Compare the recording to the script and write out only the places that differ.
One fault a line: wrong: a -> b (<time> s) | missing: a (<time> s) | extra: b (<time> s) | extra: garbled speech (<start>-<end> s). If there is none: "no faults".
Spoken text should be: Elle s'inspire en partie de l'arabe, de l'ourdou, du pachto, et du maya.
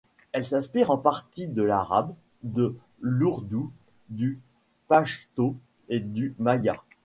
no faults